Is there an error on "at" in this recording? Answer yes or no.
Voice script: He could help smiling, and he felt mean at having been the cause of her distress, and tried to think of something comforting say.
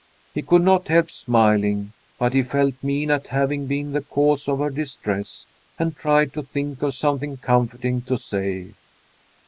no